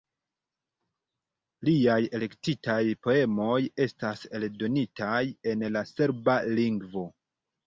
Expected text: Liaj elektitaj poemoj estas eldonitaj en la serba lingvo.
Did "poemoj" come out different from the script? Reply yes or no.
no